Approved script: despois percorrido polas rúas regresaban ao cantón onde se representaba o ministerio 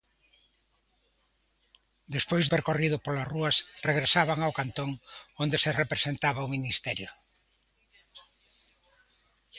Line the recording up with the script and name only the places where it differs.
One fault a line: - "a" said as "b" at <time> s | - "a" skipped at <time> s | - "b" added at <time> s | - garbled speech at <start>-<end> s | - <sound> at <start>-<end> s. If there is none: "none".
none